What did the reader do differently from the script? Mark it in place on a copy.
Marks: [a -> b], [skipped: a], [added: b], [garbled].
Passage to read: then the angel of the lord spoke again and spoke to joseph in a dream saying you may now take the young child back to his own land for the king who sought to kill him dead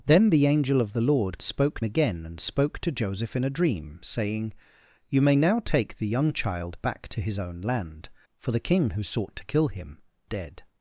then the angel of the lord spoke again and spoke to joseph in a dream saying you may now take the young child back to his own land for the king who sought to kill him dead